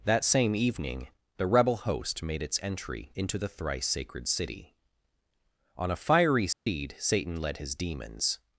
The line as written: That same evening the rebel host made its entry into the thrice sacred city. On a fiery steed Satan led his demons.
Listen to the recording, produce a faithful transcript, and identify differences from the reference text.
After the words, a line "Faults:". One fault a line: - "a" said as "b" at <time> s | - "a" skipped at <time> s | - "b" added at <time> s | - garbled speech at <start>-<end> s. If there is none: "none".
That same evening the rebel host made its entry into the thrice sacred city. On a fiery steed Satan led his demons.
Faults:
none